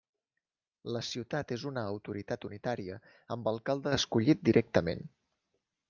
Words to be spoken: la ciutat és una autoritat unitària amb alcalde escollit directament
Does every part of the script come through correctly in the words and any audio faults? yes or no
yes